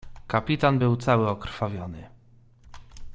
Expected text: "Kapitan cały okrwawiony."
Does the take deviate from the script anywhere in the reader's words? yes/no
yes